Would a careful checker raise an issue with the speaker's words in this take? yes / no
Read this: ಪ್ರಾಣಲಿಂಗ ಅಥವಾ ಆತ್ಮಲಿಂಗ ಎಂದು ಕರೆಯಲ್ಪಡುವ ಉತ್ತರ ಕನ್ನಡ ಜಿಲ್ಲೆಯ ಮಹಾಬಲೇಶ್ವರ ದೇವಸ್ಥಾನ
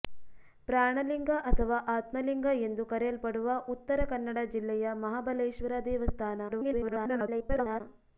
yes